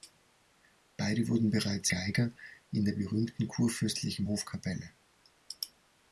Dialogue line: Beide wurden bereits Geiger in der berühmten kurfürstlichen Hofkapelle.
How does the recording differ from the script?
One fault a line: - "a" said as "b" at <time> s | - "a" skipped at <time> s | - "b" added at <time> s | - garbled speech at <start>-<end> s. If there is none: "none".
none